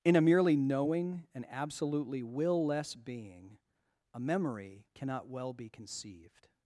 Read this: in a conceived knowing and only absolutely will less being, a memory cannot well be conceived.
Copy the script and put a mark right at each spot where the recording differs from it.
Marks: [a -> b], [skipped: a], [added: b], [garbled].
in a [conceived -> merely] knowing and [skipped: only] absolutely will less being, a memory cannot well be conceived.